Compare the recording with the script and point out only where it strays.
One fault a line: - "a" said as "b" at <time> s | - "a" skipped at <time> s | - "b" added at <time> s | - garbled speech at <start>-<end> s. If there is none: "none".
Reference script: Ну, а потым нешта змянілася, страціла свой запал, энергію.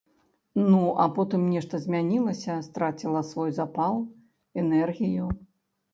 none